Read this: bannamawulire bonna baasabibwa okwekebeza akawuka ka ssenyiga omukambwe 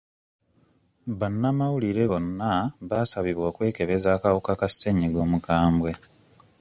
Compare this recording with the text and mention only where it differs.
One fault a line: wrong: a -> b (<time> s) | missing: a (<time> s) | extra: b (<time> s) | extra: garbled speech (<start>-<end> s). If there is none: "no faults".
no faults